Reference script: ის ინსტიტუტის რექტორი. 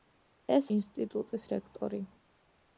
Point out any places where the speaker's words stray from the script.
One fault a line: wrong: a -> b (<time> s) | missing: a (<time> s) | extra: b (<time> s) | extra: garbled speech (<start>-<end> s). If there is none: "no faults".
no faults